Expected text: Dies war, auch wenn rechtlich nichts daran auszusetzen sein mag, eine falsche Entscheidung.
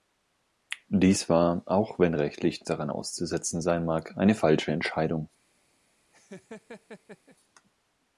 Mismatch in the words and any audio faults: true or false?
true